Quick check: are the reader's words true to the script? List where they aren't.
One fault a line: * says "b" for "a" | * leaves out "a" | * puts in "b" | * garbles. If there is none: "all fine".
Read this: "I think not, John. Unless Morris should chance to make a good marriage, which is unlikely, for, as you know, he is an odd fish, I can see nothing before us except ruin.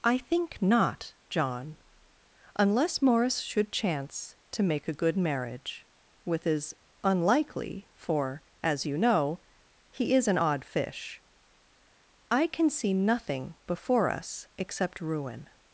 * says "with" for "which"